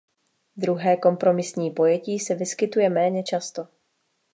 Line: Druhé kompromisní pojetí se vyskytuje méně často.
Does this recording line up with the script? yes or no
yes